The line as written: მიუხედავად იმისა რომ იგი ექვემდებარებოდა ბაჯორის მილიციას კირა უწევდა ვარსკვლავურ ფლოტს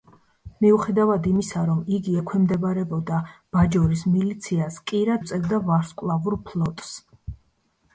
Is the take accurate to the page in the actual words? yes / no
yes